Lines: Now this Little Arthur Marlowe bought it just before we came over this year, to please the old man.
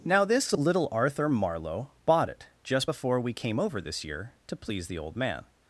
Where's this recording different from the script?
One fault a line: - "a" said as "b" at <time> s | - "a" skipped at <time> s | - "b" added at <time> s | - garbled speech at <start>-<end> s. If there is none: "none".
none